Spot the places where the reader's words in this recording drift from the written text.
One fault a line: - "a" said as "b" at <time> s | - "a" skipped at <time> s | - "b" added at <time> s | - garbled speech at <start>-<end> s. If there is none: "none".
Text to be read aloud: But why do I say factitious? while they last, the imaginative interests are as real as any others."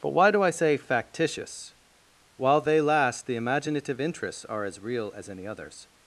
none